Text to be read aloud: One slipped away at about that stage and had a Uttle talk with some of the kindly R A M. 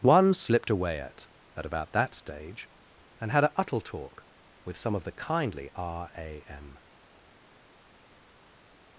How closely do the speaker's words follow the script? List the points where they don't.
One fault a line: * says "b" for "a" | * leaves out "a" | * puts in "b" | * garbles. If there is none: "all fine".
* puts in "at"